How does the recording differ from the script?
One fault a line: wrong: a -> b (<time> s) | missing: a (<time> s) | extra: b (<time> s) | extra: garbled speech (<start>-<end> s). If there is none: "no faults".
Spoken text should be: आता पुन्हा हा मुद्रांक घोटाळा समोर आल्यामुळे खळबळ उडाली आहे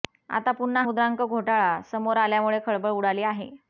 missing: हा (0.8 s)